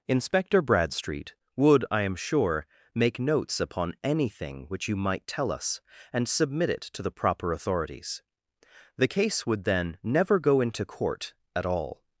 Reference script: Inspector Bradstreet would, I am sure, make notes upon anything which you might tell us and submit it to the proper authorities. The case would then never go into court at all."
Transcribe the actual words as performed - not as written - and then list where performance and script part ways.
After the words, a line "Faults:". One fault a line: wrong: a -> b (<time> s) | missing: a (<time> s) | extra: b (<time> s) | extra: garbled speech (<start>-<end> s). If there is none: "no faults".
Inspector Bradstreet would, I am sure, make notes upon anything which you might tell us and submit it to the proper authorities. The case would then never go into court at all."
Faults:
no faults